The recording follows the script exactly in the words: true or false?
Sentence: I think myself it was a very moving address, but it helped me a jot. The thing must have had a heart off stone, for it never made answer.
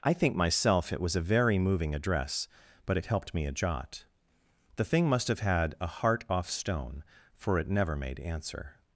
true